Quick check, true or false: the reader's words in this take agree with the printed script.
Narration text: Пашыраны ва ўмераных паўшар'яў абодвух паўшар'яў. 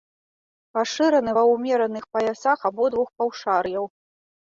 false